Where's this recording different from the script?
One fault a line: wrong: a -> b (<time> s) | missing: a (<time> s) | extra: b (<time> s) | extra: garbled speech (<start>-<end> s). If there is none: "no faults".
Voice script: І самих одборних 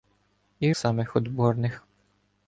no faults